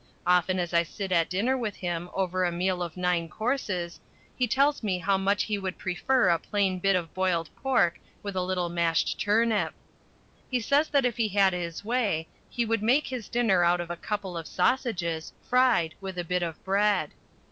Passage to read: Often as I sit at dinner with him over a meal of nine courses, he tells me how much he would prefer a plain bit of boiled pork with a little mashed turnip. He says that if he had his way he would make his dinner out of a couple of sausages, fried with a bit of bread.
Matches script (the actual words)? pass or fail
pass